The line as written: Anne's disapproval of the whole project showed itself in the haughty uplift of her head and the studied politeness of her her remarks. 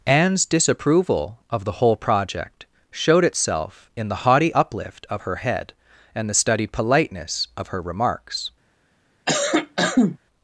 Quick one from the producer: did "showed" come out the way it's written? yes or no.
yes